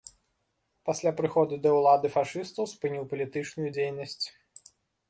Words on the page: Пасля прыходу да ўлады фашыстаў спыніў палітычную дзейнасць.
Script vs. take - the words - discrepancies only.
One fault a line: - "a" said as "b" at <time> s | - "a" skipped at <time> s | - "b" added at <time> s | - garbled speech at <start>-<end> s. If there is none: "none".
none